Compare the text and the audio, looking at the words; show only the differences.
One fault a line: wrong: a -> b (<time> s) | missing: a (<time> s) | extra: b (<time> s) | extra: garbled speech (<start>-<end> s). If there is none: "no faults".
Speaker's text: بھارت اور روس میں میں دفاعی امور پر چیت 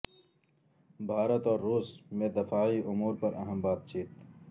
missing: میں (2.3 s)
extra: اہم بات (3.3 s)